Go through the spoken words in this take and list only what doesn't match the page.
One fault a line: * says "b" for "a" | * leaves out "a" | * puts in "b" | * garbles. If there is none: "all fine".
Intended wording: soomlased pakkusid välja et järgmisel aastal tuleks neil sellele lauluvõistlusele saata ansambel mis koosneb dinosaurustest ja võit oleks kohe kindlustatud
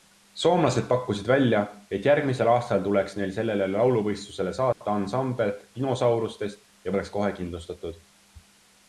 * leaves out "mis koosneb"
* leaves out "võit"